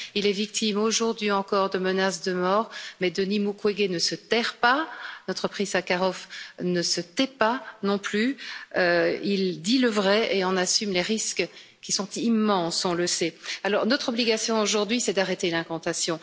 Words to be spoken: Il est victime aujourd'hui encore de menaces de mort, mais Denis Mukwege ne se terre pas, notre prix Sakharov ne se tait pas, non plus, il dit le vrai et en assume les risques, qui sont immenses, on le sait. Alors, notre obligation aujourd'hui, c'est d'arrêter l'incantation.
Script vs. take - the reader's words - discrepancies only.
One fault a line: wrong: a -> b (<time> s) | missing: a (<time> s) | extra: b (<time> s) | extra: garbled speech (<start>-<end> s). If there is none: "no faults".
no faults